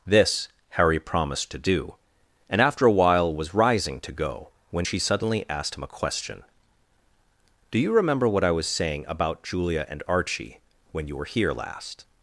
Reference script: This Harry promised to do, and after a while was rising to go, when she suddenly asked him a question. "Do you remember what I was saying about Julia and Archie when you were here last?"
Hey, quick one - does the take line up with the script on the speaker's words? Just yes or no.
yes